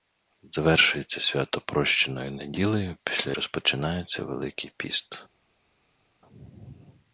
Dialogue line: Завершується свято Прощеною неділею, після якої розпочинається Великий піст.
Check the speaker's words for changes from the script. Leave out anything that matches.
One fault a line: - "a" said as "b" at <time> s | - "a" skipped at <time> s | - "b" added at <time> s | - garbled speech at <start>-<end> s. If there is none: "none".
- "якої" skipped at 3.3 s